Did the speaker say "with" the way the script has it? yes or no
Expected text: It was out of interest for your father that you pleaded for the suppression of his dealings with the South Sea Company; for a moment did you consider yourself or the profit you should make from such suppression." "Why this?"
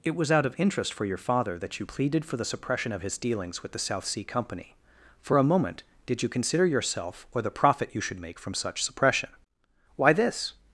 yes